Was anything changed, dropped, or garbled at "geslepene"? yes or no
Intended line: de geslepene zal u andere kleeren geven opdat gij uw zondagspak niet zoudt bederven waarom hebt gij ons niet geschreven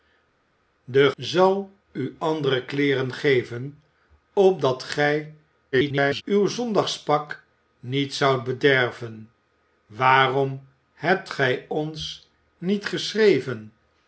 yes